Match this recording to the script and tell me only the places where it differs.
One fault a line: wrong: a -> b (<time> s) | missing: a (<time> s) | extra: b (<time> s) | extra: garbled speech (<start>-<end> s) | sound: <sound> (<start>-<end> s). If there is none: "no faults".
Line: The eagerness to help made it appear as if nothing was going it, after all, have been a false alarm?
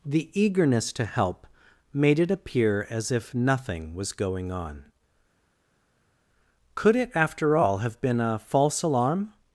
extra: on Could (4.5 s)